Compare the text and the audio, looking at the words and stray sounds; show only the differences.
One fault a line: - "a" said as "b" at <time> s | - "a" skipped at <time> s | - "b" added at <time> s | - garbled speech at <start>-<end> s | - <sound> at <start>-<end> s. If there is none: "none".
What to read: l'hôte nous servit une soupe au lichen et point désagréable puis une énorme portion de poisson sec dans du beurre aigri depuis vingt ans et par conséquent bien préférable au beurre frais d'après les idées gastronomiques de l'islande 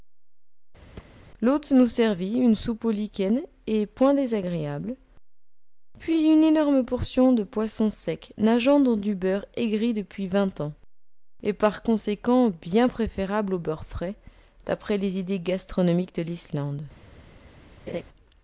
- thud at 1.0-1.2 s
- "nageant" added at 8.4 s
- laugh at 17.9-18.0 s